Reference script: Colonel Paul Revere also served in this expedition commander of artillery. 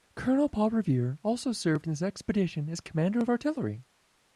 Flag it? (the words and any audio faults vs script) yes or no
yes